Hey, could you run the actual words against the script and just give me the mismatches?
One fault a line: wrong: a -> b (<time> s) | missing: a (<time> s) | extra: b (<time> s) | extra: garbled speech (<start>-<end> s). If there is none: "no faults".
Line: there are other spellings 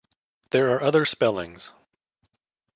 no faults